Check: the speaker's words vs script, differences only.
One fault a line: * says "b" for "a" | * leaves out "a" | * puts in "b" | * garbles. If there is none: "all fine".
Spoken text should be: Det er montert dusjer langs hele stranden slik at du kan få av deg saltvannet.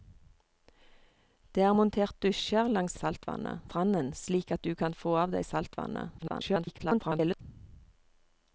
* says "saltvannet" for "hele"
* garbles